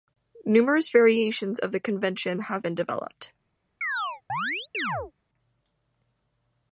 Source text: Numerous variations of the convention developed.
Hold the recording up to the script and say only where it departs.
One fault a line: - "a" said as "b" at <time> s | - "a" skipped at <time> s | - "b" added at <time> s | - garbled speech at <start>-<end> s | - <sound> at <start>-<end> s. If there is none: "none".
- "have been" added at 2.4 s
- chirp at 3.8-5.1 s